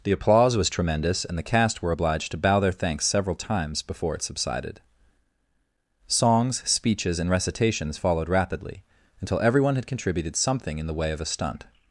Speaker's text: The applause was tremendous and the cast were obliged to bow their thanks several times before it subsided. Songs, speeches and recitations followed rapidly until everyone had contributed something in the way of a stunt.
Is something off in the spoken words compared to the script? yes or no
no